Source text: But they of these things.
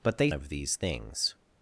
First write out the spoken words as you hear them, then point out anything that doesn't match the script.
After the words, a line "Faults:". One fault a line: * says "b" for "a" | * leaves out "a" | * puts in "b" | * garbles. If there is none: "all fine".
But they of these things.
Faults:
all fine